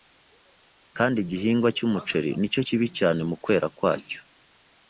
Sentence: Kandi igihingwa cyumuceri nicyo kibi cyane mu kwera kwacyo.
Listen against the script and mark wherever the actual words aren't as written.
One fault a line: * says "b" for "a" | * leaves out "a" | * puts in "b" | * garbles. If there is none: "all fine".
all fine